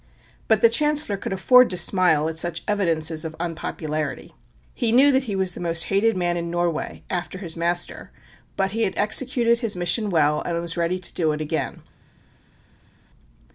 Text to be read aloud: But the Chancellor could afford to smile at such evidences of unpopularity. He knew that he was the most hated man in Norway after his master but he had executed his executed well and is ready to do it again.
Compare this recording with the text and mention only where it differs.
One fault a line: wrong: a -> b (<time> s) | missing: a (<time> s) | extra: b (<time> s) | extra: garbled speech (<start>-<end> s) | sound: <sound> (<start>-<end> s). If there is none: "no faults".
wrong: executed -> mission (9.7 s)
wrong: is -> was (10.6 s)